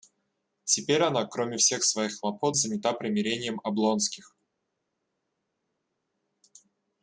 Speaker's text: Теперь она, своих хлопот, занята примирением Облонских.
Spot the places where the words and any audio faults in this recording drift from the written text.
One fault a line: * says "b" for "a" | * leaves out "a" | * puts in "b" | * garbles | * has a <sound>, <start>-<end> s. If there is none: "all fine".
* puts in "кроме всех"